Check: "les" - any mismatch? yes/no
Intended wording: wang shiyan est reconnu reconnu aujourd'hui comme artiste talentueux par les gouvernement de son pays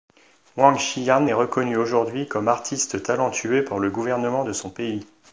yes